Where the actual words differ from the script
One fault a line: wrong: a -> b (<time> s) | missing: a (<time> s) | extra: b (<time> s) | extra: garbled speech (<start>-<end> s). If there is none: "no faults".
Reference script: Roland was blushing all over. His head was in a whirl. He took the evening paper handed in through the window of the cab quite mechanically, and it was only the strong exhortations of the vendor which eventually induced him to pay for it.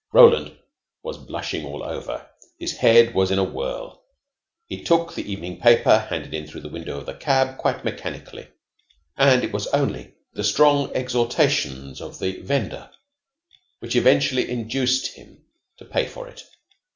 no faults